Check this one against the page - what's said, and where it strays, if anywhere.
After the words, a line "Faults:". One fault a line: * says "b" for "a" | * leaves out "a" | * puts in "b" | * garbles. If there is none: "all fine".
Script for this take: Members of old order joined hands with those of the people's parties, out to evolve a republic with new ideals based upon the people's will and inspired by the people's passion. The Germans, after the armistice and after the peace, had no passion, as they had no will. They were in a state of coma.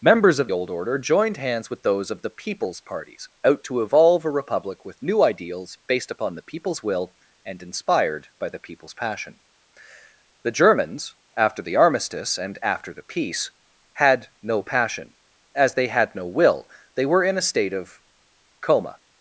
Members of old order joined hands with those of the people's parties, out to evolve a republic with new ideals based upon the people's will and inspired by the people's passion. The Germans, after the armistice and after the peace, had no passion, as they had no will. They were in a state of coma.
Faults:
all fine